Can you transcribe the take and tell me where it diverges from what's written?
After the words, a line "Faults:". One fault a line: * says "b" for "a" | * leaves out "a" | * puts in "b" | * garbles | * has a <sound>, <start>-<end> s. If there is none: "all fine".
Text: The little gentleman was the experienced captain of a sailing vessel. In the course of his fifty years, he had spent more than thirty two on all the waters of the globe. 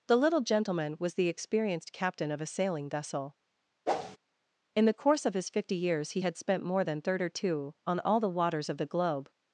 The little gentleman was the experienced captain of a sailing vessel. In the course of his fifty years, he had spent more than thirty two on all the waters of the globe.
Faults:
* has a whoosh, 3.9-4.2 s